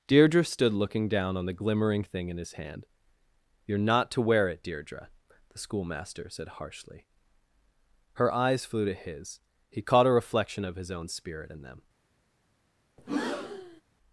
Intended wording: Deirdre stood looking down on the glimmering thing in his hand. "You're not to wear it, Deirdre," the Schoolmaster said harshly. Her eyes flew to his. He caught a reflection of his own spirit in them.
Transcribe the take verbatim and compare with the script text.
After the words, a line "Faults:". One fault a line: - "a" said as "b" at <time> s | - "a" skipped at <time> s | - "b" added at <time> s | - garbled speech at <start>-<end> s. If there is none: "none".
Deirdre stood looking down on the glimmering thing in his hand. "You're not to wear it, Deirdre," the Schoolmaster said harshly. Her eyes flew to his. He caught a reflection of his own spirit in them.
Faults:
none